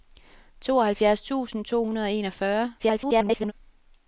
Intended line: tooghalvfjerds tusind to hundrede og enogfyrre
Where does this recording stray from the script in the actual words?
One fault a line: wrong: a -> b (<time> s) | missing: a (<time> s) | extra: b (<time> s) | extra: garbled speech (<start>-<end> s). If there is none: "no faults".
extra: garbled speech (2.8-3.5 s)